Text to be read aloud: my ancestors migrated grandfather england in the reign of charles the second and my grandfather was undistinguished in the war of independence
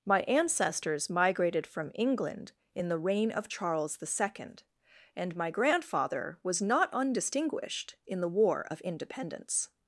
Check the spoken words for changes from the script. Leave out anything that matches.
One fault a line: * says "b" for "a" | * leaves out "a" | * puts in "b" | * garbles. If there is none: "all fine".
* says "from" for "grandfather"
* puts in "not"